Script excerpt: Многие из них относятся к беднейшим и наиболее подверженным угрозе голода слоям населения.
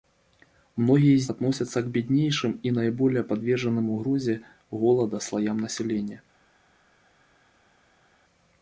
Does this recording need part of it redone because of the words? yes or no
yes